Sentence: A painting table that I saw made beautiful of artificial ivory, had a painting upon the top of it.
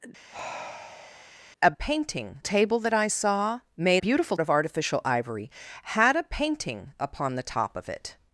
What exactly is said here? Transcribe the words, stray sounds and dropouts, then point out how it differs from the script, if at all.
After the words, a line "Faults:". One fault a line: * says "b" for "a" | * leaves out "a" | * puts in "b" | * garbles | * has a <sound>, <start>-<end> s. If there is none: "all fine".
A painting table that I saw made beautiful of artificial ivory, had a painting upon the top of it.
Faults:
* has a sigh, 0.3-1.3 s